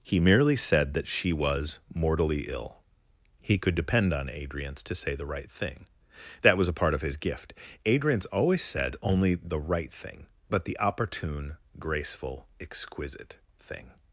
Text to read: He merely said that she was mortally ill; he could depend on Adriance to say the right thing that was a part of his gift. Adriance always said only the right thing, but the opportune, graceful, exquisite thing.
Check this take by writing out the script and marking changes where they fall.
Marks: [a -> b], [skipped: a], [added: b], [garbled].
He merely said that she was mortally ill; he could depend on Adriance to say the right thing that was a part of his gift. Adriance always said only the right thing, but the opportune, graceful, exquisite thing.